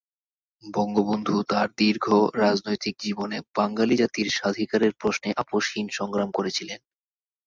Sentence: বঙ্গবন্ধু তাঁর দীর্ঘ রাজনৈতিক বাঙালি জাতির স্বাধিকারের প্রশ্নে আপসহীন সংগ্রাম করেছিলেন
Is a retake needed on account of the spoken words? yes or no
yes